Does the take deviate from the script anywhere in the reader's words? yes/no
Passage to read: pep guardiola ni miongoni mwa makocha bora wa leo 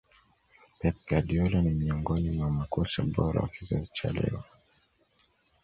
yes